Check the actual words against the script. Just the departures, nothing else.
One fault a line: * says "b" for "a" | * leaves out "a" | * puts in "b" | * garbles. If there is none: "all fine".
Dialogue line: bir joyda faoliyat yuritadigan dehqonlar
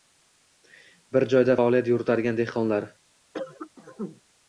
all fine